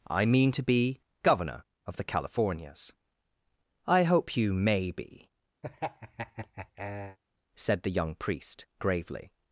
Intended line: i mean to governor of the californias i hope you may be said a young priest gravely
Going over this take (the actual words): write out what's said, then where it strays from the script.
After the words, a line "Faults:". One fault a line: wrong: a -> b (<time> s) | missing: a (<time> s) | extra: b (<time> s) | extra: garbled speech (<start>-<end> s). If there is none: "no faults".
i mean to be governor of the californias i hope you may be said the young priest gravely
Faults:
extra: be (0.6 s)
wrong: a -> the (7.8 s)